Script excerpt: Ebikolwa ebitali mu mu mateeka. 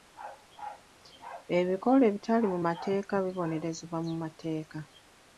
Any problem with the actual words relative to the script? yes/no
yes